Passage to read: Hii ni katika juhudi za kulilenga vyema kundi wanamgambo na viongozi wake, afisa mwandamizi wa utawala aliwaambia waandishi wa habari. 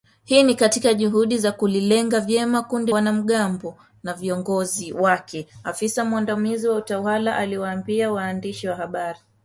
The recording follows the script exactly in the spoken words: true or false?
true